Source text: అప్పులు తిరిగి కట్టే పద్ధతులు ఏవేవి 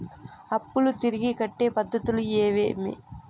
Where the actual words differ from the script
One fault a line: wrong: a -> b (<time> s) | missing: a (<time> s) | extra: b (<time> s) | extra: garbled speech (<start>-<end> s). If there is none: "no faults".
no faults